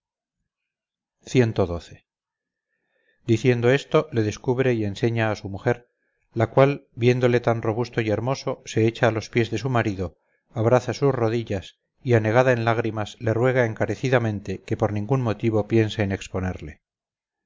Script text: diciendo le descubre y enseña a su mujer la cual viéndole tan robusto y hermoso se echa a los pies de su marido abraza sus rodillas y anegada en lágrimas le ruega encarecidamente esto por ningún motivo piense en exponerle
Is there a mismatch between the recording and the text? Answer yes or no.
yes